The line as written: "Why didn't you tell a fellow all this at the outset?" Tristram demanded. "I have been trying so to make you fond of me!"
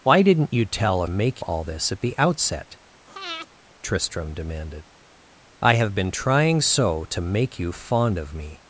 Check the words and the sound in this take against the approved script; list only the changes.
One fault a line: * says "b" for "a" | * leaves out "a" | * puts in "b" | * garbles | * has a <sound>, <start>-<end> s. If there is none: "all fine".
* says "make" for "fellow"
* has a breath, 3.1-3.5 s